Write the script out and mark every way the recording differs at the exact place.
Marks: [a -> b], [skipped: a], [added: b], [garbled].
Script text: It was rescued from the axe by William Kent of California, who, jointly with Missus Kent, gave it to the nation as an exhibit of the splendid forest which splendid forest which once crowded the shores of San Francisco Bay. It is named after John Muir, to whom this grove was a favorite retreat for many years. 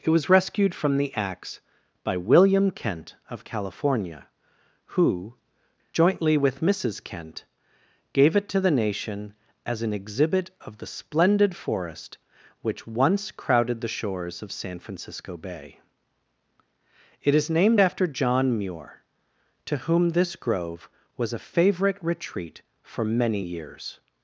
It was rescued from the axe by William Kent of California, who, jointly with Missus Kent, gave it to the nation as an exhibit of the splendid forest which [skipped: splendid forest which] once crowded the shores of San Francisco Bay. It is named after John Muir, to whom this grove was a favorite retreat for many years.